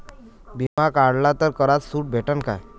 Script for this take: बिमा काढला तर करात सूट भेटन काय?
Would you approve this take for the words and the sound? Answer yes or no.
no